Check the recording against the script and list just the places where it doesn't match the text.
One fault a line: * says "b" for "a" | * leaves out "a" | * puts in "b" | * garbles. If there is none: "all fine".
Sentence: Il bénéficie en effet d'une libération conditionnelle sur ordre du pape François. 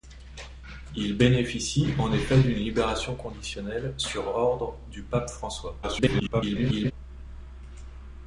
* garbles